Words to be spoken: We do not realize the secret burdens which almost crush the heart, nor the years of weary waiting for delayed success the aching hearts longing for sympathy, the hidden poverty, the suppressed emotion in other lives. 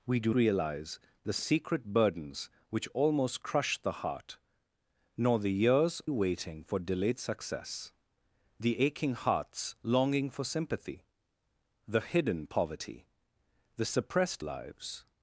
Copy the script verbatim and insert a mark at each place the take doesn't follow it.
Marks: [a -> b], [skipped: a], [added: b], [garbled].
We do [skipped: not] realize the secret burdens which almost crush the heart, nor the years [skipped: of weary] waiting for delayed success the aching hearts longing for sympathy, the hidden poverty, the suppressed [skipped: emotion in other] lives.